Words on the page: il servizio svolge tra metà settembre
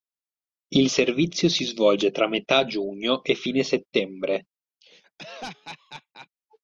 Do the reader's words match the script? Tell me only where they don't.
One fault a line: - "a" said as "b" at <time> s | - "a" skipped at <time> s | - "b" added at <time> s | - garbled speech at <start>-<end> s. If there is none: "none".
- "si" added at 1.5 s
- "giugno e fine" added at 2.6 s